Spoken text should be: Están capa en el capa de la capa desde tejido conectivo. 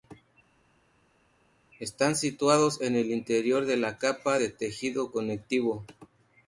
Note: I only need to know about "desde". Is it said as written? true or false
false